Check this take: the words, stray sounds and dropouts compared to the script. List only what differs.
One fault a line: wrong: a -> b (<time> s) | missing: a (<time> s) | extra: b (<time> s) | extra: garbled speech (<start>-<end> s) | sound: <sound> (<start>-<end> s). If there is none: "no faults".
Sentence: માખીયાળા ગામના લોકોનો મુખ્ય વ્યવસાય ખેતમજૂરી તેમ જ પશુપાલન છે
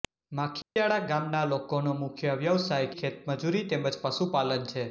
sound: dropout (0.6-0.8 s)